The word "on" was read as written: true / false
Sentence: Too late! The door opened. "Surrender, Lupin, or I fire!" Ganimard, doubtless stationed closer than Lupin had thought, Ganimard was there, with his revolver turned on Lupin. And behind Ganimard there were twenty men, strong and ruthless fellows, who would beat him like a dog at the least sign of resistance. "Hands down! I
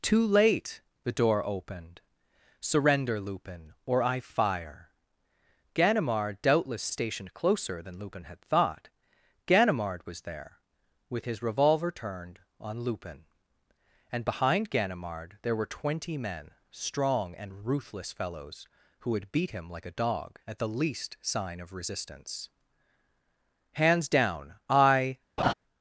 true